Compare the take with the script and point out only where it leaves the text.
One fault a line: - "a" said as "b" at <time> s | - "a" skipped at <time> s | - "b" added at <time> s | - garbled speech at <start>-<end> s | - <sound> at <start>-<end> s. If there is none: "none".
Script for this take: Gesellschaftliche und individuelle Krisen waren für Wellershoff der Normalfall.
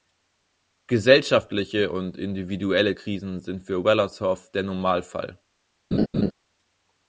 - "waren" said as "sind" at 3.4 s
- laugh at 5.9-6.3 s